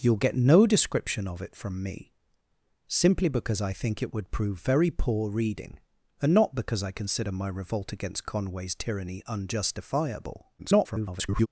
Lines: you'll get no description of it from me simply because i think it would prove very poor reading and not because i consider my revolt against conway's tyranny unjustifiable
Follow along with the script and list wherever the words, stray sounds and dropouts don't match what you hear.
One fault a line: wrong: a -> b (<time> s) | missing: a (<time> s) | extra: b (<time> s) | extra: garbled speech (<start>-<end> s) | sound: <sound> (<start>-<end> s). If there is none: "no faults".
extra: garbled speech (10.6-11.5 s)